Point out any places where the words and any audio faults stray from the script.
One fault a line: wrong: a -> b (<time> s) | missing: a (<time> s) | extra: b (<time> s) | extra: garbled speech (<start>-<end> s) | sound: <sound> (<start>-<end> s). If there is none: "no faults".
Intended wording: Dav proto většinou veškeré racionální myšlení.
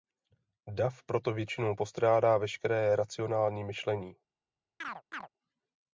extra: postrádá (1.7 s)
sound: chirp (4.8-5.3 s)